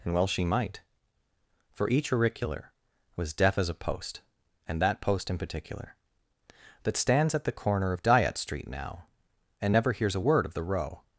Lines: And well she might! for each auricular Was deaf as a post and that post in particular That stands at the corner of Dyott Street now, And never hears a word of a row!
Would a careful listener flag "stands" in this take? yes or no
no